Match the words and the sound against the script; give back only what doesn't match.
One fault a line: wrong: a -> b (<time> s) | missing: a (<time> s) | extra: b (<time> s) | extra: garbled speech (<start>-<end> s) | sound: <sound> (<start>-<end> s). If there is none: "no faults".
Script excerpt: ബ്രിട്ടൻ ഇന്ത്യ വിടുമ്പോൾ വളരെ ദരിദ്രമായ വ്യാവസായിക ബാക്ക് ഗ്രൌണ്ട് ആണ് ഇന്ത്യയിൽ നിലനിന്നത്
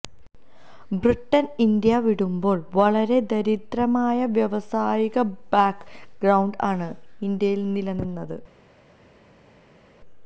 no faults